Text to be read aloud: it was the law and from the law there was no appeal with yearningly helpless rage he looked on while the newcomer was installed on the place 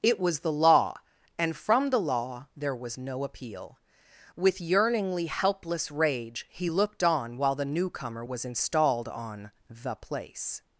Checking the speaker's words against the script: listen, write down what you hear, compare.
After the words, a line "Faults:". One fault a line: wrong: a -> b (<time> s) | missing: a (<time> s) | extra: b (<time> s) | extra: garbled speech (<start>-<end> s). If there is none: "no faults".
it was the law and from the law there was no appeal with yearningly helpless rage he looked on while the newcomer was installed on the place
Faults:
no faults